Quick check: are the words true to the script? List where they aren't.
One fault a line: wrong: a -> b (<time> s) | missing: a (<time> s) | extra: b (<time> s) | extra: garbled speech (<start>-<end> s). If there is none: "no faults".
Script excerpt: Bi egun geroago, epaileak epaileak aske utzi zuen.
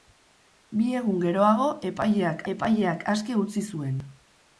no faults